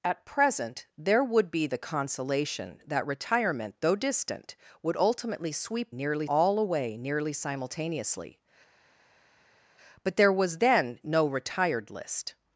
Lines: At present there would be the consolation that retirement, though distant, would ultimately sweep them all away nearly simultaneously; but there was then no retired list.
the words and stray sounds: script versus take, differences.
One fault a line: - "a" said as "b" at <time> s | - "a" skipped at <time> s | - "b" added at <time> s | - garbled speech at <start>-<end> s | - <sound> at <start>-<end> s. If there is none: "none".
- "them" said as "nearly" at 5.9 s